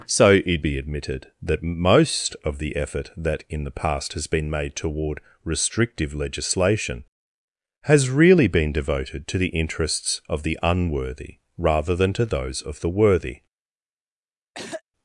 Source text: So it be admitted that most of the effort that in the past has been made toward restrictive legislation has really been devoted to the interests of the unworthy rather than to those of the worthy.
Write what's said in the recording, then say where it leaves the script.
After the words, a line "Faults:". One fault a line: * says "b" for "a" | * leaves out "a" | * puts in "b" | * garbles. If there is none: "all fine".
So it be admitted that most of the effort that in the past has been made toward restrictive legislation has really been devoted to the interests of the unworthy rather than to those of the worthy.
Faults:
all fine